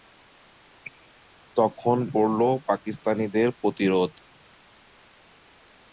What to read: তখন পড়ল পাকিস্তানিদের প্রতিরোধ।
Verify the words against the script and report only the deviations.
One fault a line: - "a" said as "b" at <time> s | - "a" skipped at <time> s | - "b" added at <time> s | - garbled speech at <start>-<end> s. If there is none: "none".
none